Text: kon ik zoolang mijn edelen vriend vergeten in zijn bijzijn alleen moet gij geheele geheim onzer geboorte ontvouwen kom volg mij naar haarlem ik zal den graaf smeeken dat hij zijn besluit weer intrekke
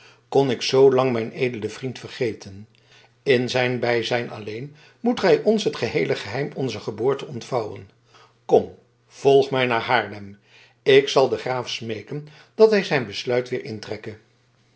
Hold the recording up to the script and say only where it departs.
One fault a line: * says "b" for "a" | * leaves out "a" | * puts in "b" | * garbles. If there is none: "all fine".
* puts in "ons het"